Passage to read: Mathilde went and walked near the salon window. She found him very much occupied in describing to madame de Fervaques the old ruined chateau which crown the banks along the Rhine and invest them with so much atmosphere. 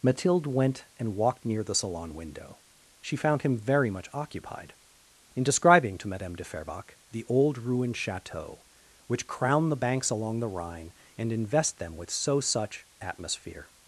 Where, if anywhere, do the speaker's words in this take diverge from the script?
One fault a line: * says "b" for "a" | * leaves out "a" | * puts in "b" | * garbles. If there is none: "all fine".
* says "such" for "much"